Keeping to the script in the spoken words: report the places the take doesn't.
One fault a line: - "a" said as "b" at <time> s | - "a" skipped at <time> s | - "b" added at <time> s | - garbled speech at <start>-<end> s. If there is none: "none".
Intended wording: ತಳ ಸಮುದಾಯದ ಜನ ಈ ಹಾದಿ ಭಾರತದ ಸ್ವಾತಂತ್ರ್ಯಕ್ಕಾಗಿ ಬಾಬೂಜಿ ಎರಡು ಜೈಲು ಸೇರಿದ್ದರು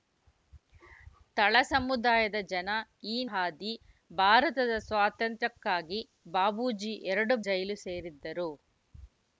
none